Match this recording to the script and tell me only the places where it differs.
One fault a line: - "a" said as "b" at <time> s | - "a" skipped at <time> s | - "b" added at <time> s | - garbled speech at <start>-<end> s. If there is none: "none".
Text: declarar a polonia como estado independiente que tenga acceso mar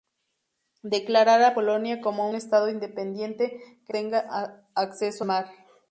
none